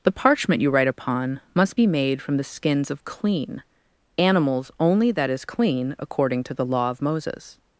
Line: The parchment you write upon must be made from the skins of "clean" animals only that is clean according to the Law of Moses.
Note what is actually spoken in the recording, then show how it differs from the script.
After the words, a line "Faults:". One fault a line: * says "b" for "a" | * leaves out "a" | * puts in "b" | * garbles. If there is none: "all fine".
The parchment you write upon must be made from the skins of "clean" animals only that is clean according to the Law of Moses.
Faults:
all fine